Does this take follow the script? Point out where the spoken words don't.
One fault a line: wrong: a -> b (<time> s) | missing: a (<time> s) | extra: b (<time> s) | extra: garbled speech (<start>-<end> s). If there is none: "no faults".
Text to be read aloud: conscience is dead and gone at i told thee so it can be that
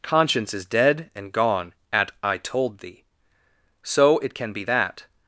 no faults